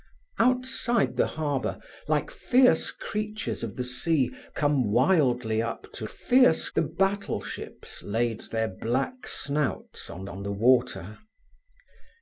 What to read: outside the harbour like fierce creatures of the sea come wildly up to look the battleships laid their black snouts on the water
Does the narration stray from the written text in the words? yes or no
yes